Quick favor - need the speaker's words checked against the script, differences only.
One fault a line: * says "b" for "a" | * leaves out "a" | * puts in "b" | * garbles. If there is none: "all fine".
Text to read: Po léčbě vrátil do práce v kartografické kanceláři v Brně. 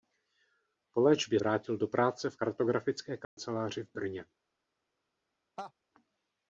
all fine